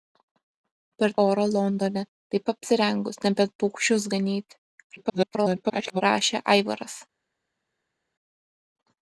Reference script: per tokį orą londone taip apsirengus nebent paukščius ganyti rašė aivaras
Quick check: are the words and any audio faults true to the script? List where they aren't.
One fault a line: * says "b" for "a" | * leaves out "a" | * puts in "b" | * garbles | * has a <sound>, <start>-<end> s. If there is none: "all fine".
* leaves out "tokį"
* garbles